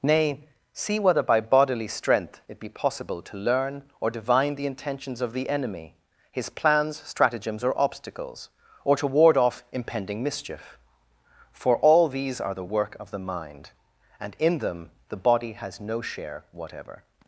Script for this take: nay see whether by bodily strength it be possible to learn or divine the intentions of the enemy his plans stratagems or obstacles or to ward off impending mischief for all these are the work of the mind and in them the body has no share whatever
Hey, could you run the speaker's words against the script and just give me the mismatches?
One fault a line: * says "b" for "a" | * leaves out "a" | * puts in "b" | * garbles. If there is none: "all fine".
all fine